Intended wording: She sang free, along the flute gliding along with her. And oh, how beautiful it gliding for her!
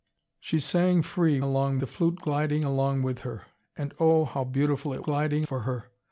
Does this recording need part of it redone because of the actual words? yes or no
no